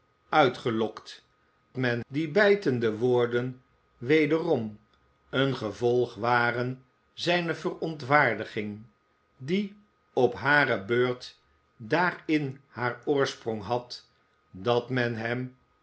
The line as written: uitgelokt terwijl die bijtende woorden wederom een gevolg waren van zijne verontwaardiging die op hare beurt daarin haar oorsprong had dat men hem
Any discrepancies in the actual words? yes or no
yes